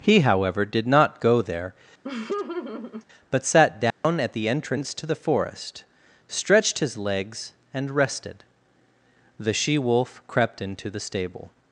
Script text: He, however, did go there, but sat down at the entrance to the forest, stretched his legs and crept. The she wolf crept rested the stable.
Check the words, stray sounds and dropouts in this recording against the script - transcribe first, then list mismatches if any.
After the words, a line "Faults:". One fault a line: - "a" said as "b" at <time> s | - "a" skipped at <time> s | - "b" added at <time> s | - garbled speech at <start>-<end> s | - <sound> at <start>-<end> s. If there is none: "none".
He, however, did not go there, but sat down at the entrance to the forest, stretched his legs and rested. The she wolf crept into the stable.
Faults:
- "not" added at 0.9 s
- laugh at 2.0-3.0 s
- dropout at 3.9-4.0 s
- "crept" said as "rested" at 7.9 s
- "rested" said as "into" at 10.6 s